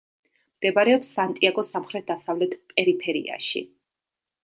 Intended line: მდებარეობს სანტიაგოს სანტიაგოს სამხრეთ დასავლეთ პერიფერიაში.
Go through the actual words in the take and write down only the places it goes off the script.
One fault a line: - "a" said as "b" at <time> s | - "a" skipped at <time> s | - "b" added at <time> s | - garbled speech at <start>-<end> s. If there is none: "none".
- "სანტიაგოს" skipped at 1.7 s